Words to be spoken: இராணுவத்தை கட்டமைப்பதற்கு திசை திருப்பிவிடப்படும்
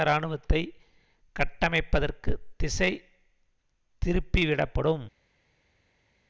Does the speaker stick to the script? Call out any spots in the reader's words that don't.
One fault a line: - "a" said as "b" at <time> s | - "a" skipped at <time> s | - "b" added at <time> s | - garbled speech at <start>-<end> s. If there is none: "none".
none